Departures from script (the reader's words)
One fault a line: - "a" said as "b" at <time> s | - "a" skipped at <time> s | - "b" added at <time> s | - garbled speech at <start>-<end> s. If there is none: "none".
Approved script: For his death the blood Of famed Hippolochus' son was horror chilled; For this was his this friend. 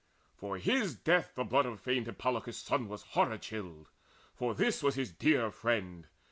- "this" said as "dear" at 5.1 s